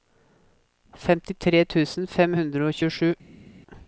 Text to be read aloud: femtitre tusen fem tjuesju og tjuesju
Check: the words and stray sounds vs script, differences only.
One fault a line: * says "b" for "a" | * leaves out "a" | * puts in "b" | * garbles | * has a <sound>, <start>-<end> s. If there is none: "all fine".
* says "hundre" for "tjuesju"